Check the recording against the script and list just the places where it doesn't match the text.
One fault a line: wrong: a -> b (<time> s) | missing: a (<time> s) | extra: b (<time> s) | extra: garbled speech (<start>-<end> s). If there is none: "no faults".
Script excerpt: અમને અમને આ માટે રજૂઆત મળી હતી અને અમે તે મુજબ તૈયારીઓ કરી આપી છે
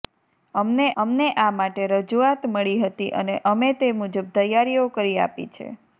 no faults